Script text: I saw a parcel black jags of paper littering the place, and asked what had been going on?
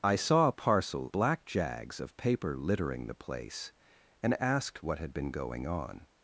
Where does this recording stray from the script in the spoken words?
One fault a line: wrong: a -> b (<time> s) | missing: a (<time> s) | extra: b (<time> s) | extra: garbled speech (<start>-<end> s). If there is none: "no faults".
no faults